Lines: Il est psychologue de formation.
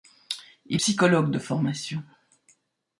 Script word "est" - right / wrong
wrong